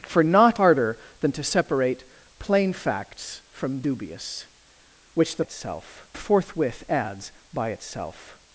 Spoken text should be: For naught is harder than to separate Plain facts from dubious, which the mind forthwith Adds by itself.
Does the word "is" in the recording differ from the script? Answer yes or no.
yes